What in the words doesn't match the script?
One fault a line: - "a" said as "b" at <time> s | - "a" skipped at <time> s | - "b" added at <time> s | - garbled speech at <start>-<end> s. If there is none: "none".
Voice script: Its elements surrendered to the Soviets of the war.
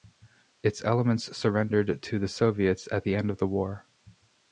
- "at the end" added at 2.9 s